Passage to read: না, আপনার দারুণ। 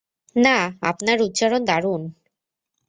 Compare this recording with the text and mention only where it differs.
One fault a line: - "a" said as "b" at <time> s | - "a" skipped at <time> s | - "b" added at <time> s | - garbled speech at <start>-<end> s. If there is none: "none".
- "উচ্চারণ" added at 1.2 s